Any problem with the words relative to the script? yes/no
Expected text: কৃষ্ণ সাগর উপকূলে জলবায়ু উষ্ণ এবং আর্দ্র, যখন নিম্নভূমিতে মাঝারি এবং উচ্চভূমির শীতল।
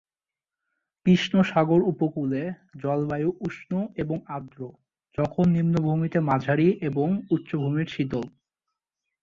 no